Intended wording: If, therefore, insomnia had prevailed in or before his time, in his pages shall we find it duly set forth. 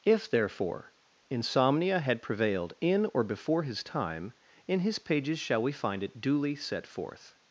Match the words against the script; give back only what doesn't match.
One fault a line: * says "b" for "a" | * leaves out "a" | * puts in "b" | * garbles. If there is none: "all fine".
all fine